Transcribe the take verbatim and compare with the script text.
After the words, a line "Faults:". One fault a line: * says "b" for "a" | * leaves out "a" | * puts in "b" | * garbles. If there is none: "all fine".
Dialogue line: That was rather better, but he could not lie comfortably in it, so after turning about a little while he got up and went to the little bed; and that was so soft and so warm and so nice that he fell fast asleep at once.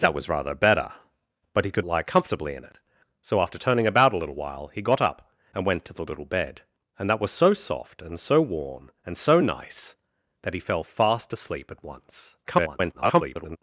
That was rather better, but he could lie comfortably in it, so after turning about a little while he got up and went to the little bed; and that was so soft and so warm and so nice that he fell fast asleep at once. [garbled]
Faults:
* leaves out "not"
* garbles